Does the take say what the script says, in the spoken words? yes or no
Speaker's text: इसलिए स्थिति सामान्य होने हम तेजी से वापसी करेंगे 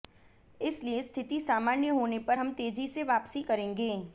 no